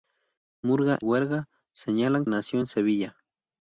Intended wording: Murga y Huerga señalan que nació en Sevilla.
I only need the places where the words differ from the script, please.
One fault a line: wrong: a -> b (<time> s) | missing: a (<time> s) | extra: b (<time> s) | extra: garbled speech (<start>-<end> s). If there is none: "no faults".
missing: y (1.0 s)
missing: que (2.2 s)